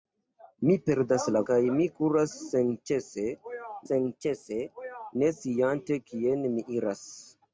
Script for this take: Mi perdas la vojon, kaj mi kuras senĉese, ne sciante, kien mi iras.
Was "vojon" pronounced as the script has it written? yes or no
no